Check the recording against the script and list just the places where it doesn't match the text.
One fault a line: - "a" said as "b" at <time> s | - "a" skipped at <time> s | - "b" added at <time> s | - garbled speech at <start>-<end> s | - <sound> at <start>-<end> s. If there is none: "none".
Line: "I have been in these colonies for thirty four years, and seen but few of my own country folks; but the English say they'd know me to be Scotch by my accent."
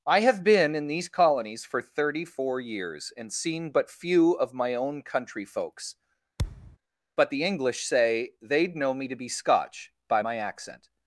- thud at 6.4-6.8 s